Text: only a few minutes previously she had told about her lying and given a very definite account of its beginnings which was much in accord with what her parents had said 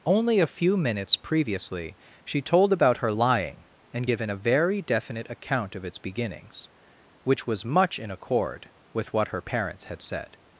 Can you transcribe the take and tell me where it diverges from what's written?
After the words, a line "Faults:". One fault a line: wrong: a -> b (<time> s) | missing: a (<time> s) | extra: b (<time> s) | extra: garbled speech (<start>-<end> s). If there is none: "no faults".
only a few minutes previously she told about her lying and given a very definite account of its beginnings which was much in accord with what her parents had said
Faults:
missing: had (2.4 s)